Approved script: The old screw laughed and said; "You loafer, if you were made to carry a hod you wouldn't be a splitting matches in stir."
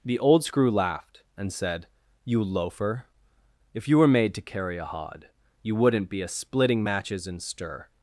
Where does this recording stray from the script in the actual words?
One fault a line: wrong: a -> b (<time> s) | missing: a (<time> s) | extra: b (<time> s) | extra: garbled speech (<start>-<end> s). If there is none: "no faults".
no faults